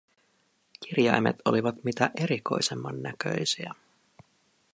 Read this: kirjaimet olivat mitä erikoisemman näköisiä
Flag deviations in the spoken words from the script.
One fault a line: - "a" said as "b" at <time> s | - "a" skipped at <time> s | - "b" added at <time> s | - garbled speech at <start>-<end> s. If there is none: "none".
none